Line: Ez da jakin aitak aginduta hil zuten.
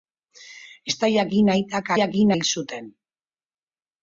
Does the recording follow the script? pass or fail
fail